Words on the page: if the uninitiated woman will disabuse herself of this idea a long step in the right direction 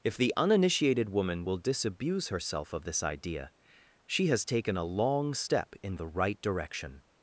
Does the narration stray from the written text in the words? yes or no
yes